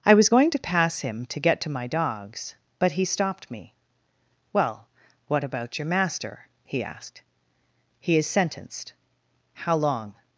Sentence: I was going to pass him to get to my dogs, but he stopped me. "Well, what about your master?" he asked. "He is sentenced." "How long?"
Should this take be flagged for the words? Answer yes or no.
no